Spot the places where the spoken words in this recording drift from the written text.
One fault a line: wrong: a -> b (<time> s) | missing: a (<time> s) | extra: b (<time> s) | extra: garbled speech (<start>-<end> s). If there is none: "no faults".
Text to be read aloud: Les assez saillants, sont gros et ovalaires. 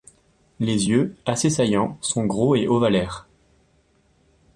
extra: yeux (0.9 s)